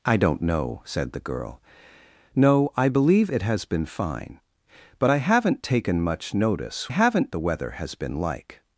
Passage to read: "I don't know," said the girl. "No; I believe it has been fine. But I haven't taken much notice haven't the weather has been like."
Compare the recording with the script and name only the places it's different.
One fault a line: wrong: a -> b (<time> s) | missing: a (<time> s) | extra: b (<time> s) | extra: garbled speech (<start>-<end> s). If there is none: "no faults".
no faults